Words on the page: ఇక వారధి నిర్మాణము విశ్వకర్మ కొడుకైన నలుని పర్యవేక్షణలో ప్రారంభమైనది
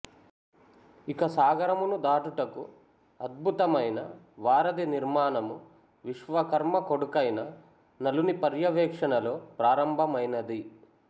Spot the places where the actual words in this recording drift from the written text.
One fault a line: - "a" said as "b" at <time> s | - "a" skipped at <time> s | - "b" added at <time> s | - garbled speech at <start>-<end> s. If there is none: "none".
- "సాగరమును దాటుటకు అద్భుతమైన" added at 1.3 s